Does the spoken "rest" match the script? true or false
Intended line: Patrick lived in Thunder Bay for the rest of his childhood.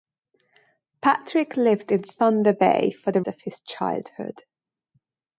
false